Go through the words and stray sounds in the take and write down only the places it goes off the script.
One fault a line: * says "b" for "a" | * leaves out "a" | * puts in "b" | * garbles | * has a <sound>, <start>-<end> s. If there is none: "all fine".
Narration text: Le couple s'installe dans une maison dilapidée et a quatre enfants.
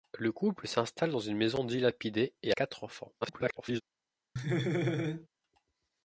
* leaves out "a"
* garbles
* has a laugh, 4.4-5.3 s